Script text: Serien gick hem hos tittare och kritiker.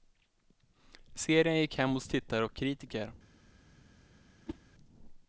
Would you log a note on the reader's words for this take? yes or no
no